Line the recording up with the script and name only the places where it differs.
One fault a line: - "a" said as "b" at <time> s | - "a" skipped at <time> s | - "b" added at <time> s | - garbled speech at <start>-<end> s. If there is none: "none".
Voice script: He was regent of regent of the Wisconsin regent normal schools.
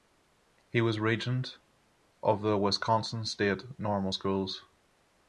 - "regent of" skipped at 2.4 s
- "regent" said as "state" at 3.2 s